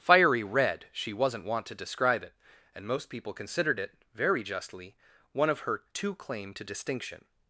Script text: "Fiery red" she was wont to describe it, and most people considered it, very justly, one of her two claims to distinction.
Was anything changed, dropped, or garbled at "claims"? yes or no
yes